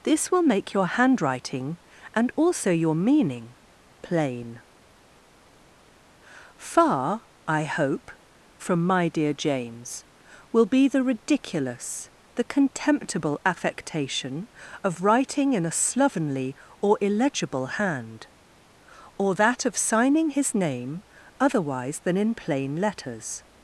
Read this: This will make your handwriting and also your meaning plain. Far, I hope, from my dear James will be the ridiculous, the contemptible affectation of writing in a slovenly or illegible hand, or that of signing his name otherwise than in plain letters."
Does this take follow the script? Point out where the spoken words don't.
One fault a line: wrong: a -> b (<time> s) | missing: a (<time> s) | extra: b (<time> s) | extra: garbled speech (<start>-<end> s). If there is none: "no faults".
no faults